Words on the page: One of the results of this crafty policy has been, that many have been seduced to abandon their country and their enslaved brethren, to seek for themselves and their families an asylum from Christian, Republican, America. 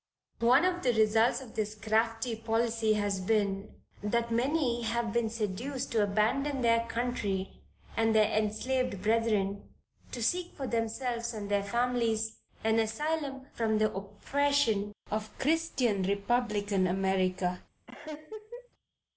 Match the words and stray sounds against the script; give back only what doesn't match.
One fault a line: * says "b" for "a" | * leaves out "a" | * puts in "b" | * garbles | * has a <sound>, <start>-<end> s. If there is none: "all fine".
* puts in "the oppression of"
* has a laugh, 17.9-18.7 s